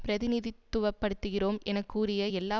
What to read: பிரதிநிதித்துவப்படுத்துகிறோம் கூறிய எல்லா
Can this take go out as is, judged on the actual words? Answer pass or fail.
fail